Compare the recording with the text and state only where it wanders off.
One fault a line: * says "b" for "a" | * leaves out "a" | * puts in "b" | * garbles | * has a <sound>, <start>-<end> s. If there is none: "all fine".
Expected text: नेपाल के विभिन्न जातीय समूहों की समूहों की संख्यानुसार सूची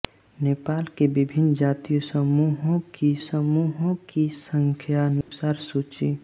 * has a dropout, 5.2-5.3 s